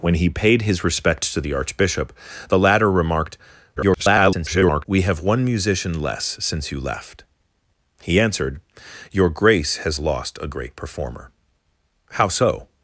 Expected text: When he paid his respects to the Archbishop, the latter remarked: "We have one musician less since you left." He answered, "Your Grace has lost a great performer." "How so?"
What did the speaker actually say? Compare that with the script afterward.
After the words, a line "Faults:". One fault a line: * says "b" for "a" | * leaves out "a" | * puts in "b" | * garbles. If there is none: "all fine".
When he paid his respects to the Archbishop, the latter remarked: [garbled] "We have one musician less since you left." He answered, "Your Grace has lost a great performer." "How so?"
Faults:
* garbles